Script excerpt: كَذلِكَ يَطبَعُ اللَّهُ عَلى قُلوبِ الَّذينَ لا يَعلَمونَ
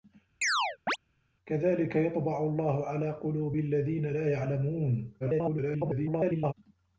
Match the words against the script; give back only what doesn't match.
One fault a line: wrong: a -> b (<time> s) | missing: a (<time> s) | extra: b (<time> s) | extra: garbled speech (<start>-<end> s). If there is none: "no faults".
extra: garbled speech (5.2-6.5 s)